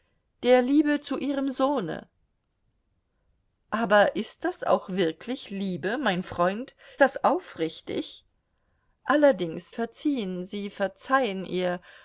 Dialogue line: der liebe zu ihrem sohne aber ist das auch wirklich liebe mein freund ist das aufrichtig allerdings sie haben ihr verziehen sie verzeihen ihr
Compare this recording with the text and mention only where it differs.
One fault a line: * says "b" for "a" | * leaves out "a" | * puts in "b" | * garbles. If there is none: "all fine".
* leaves out "ist"
* leaves out "sie haben ihr"